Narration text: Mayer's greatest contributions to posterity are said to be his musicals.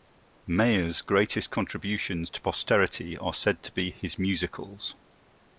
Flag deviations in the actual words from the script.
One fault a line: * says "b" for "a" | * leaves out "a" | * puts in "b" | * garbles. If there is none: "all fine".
all fine